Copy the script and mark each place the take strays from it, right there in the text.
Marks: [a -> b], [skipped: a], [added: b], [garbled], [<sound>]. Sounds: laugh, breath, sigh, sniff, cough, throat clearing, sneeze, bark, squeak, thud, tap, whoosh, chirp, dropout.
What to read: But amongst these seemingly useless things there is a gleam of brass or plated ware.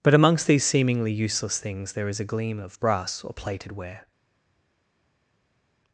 But amongst these seemingly useless things there is a gleam of brass or plated ware.